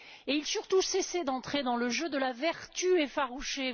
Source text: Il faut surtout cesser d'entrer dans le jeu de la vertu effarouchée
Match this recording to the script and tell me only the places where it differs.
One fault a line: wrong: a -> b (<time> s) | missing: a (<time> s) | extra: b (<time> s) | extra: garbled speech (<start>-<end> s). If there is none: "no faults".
missing: faut (0.4 s)